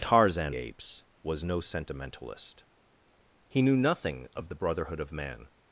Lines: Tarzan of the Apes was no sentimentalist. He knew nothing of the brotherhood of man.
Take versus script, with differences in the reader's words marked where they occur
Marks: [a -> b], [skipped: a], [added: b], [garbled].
Tarzan [skipped: of the] Apes was no sentimentalist. He knew nothing of the brotherhood of man.